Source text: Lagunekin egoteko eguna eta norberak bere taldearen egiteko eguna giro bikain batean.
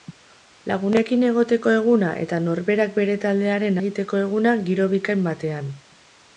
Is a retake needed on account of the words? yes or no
no